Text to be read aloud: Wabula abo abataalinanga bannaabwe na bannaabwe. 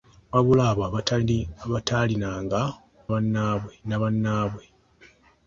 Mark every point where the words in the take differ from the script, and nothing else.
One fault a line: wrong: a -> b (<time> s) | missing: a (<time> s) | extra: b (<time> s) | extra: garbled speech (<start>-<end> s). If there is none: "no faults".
no faults